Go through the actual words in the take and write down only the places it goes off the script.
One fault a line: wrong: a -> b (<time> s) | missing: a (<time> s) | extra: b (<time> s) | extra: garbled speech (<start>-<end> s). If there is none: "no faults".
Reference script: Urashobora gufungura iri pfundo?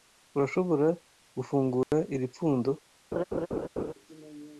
no faults